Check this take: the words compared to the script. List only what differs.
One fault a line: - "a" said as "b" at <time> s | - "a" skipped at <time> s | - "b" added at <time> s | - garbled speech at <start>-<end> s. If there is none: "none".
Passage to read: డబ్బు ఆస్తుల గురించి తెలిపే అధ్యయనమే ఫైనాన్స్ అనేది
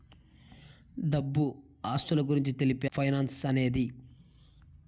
- "అధ్యయనమే" skipped at 2.9 s